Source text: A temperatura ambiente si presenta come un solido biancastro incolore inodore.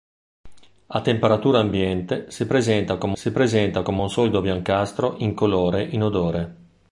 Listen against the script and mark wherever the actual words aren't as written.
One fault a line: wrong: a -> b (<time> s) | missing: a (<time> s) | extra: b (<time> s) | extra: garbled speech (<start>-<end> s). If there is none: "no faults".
extra: si presenta come (3.2 s)